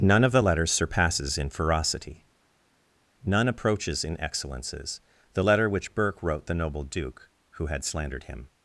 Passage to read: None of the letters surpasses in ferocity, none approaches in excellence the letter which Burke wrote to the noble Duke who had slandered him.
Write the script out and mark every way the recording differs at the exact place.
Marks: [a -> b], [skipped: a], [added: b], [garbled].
None of the letters surpasses in ferocity, none approaches in [excellence -> excellences] the letter which Burke wrote [skipped: to] the noble Duke who had slandered him.